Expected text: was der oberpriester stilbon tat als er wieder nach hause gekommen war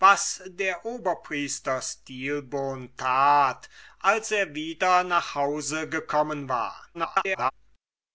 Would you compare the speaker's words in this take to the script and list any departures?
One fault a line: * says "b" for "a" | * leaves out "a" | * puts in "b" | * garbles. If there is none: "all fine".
* garbles